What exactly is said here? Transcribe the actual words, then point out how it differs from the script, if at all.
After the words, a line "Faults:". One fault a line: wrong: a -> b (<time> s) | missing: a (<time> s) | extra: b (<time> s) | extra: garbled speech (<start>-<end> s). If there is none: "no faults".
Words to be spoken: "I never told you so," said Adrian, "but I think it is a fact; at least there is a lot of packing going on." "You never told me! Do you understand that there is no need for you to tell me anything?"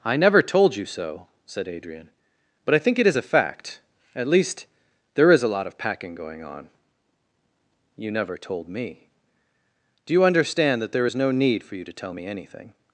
"I never told you so," said Adrian, "but I think it is a fact; at least there is a lot of packing going on." "You never told me! Do you understand that there is no need for you to tell me anything?"
Faults:
no faults